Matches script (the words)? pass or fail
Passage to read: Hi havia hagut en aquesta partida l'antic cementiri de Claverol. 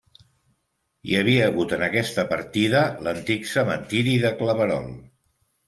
pass